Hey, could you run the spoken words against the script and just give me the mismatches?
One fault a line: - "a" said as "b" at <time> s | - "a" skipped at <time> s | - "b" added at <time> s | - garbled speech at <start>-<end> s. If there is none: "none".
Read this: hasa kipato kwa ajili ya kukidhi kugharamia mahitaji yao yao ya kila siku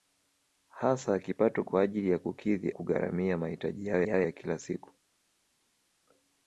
none